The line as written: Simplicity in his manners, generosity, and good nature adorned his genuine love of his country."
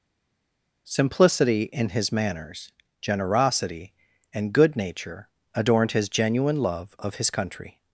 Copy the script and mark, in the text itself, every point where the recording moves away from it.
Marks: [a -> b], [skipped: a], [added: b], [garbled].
Simplicity in his manners, generosity, and good nature adorned his genuine love of his country."